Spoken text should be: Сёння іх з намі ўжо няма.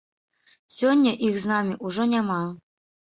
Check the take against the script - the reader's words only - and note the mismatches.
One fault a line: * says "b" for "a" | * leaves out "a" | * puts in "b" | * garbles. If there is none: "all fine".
all fine